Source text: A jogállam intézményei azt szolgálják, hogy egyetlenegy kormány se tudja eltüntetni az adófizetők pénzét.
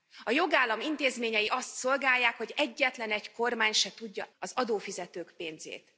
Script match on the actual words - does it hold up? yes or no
no